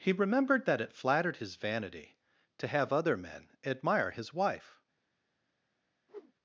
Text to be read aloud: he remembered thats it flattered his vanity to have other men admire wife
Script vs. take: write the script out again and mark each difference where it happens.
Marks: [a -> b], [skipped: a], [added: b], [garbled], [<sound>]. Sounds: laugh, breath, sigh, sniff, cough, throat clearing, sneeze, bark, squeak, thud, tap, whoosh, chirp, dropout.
he remembered [thats -> that] it flattered his vanity to have other men admire [added: his] wife [whoosh]